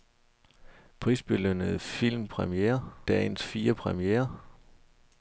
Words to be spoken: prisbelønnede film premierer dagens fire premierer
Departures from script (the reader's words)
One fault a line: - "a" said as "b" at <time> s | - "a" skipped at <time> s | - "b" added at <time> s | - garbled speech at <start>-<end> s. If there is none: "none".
none